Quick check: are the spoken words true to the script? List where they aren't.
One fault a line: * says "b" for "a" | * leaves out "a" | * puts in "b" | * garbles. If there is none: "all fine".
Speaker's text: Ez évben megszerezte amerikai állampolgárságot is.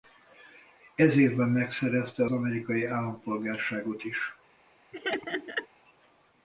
all fine